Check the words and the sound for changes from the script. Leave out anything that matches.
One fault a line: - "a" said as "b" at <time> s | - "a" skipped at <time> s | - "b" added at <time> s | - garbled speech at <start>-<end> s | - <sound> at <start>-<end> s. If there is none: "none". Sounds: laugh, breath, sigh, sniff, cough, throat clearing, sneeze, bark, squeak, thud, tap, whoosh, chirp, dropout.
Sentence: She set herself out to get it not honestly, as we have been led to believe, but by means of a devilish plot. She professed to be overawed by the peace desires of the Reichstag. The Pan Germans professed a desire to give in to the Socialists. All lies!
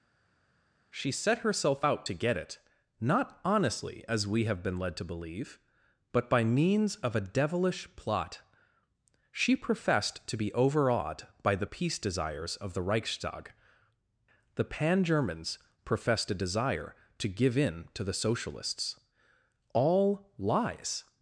none